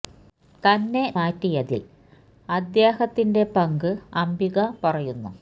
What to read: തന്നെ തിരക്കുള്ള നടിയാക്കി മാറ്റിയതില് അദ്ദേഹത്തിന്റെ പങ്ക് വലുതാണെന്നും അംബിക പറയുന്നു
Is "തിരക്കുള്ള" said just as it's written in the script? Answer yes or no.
no